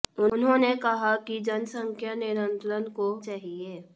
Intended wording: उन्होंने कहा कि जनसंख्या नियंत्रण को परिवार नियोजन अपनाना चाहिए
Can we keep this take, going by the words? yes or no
no